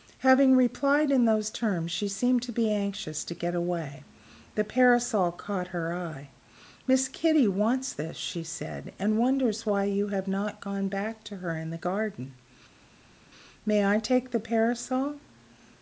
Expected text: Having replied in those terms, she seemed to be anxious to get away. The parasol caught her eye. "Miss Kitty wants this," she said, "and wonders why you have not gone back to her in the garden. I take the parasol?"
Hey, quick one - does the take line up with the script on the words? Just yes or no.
no